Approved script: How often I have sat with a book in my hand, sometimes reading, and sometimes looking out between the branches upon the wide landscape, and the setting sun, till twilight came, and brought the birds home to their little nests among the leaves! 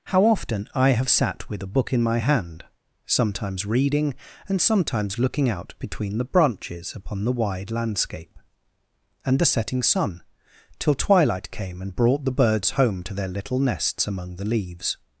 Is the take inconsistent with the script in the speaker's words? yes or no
no